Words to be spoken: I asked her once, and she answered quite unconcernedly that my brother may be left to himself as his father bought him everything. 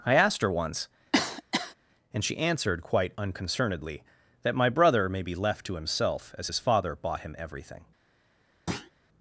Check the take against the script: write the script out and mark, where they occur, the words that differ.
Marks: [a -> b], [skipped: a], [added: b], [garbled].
I asked her once, and she answered quite unconcernedly that my brother may be left to himself as his father bought him everything.